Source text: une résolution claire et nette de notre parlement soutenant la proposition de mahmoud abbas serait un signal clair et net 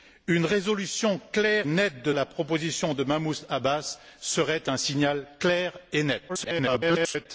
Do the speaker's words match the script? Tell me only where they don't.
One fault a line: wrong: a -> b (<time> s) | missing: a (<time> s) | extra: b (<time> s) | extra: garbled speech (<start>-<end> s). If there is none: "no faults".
missing: et (1.7 s)
missing: notre parlement soutenant (2.1 s)
extra: garbled speech (6.3-7.3 s)